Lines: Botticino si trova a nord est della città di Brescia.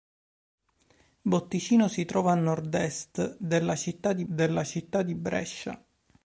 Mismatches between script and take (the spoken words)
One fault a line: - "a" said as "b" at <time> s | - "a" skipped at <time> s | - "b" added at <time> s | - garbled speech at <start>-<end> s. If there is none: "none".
- "della città di" added at 4.2 s